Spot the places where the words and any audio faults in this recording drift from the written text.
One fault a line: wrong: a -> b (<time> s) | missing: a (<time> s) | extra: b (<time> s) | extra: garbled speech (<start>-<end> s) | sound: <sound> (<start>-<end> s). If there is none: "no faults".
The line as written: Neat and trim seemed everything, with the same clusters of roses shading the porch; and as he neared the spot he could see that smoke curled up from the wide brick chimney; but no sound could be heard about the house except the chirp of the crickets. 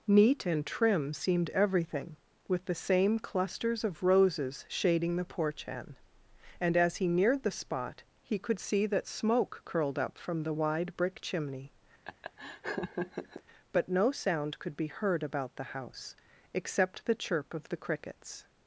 extra: hen (5.7 s)
sound: laugh (12.0-13.4 s)